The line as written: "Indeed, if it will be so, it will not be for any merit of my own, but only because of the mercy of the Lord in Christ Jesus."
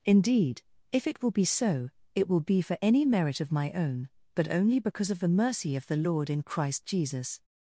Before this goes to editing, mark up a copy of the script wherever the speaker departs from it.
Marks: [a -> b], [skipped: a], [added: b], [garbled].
"Indeed, if it will be so, it will [skipped: not] be for any merit of my own, but only because of the mercy of the Lord in Christ Jesus."